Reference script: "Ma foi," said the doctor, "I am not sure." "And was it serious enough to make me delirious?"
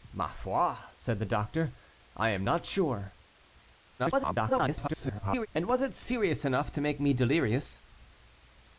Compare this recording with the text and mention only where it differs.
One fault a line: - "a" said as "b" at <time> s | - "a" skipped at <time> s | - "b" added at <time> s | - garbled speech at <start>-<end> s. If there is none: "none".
- garbled speech at 4.0-5.5 s